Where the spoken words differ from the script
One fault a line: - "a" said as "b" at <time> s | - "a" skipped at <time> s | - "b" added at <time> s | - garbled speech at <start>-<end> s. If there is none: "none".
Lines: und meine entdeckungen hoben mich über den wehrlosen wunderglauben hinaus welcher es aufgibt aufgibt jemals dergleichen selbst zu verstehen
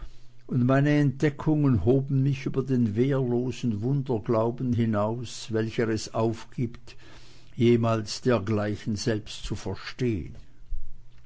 - "aufgibt" skipped at 6.9 s